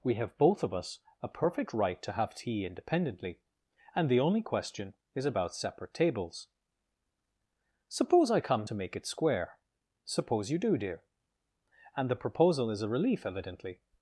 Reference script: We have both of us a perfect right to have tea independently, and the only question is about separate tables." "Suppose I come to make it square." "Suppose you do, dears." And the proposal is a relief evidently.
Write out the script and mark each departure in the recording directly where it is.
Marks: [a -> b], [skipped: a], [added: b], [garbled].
We have both of us a perfect right to have tea independently, and the only question is about separate tables." "Suppose I come to make it square." "Suppose you do, [dears." -> dear] And the proposal is a relief evidently.